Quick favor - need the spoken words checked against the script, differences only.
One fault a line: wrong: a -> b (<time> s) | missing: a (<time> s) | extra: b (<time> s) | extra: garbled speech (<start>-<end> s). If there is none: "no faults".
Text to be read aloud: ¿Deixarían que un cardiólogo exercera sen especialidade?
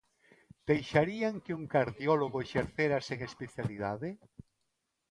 no faults